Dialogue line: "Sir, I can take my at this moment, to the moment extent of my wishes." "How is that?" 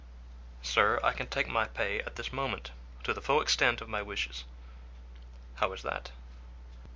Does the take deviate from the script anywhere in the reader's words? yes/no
yes